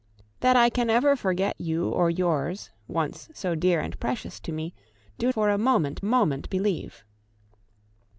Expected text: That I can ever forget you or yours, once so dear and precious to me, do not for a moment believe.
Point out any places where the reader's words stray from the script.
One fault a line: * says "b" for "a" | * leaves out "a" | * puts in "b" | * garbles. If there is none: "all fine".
* leaves out "not"
* puts in "moment"